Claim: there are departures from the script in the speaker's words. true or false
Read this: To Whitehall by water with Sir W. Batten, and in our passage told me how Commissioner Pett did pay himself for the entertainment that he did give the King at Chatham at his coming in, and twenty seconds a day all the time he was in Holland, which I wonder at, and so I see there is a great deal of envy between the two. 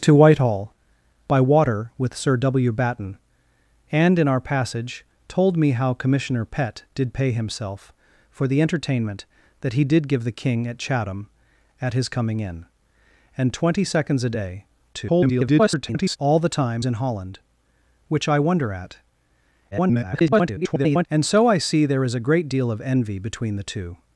true